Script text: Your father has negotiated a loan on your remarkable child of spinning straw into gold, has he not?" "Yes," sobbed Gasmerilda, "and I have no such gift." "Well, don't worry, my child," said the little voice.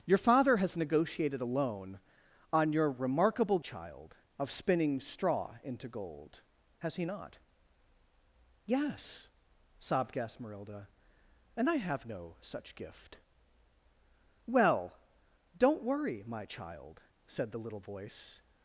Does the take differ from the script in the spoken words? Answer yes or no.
no